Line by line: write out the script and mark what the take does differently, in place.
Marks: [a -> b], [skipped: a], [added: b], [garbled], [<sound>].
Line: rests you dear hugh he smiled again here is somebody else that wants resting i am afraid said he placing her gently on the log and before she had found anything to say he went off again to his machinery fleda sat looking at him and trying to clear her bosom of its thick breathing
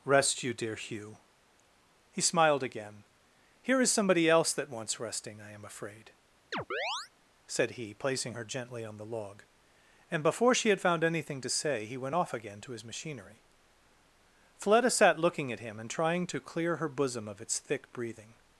[rests -> rest] you dear hugh he smiled again here is somebody else that wants resting i am afraid [chirp] said he placing her gently on the log and before she had found anything to say he went off again to his machinery fleda sat looking at him and trying to clear her bosom of its thick breathing